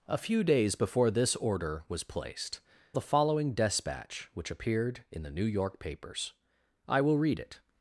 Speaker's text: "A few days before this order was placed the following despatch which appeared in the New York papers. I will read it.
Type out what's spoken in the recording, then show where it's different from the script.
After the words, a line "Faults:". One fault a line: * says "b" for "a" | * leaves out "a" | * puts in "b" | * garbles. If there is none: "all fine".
"A few days before this order was placed the following despatch which appeared in the New York papers. I will read it.
Faults:
all fine